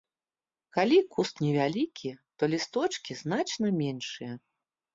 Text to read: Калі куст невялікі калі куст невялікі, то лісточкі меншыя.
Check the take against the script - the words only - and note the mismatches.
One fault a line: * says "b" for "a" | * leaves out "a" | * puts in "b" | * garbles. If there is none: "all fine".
* leaves out "калі куст невялікі"
* puts in "значна"